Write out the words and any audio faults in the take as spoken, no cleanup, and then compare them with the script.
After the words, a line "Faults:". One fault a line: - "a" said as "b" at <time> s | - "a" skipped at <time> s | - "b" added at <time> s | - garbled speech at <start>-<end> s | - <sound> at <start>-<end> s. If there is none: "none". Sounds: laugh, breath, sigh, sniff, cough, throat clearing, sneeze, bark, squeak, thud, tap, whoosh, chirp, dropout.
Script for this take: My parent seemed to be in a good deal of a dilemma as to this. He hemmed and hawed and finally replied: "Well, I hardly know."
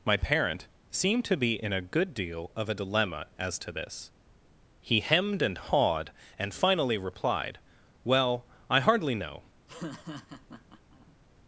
My parent seemed to be in a good deal of a dilemma as to this. He hemmed and hawed and finally replied: "Well, I hardly know."
Faults:
- laugh at 9.7-11.2 s